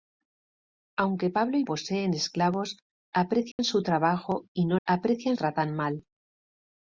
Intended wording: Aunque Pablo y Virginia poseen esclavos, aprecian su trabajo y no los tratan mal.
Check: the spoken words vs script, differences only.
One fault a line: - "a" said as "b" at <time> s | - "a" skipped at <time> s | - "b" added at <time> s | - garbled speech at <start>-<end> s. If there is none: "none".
- "Virginia" skipped at 1.6 s
- "los" said as "aprecian" at 4.9 s